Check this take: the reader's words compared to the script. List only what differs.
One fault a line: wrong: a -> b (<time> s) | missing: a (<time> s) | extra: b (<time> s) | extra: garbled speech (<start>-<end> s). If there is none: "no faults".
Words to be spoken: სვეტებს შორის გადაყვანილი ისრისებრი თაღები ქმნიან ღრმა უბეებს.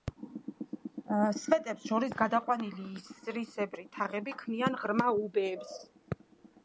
no faults